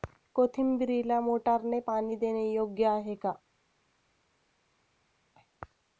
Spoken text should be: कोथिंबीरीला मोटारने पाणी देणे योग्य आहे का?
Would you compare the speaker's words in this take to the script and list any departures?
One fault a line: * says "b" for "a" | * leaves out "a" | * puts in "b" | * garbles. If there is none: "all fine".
all fine